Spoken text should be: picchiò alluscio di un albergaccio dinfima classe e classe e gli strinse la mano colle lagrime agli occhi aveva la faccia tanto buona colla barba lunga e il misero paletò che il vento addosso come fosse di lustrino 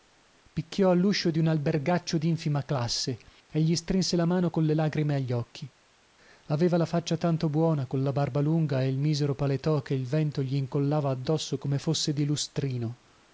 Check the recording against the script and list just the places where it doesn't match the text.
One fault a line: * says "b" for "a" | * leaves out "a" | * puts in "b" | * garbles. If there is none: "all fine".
* leaves out "classe e"
* puts in "gli incollava"